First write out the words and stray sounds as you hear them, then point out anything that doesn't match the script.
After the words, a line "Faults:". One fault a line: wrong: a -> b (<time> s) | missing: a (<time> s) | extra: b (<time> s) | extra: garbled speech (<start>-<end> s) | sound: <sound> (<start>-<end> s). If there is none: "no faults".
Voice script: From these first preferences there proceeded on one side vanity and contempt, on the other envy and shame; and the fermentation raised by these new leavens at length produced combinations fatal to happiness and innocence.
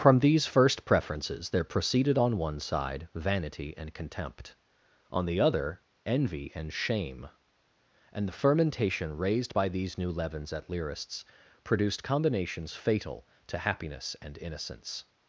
From these first preferences there proceeded on one side vanity and contempt, on the other envy and shame; and the fermentation raised by these new leavens at lyrists produced combinations fatal to happiness and innocence.
Faults:
wrong: length -> lyrists (10.7 s)